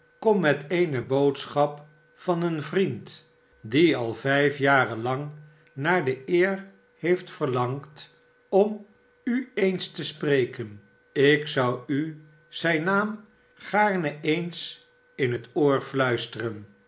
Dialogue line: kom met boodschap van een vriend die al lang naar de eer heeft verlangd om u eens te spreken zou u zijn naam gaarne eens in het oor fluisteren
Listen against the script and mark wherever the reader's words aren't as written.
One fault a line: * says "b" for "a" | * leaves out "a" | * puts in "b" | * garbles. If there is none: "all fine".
* puts in "eene"
* puts in "vijf jaren"
* puts in "ik"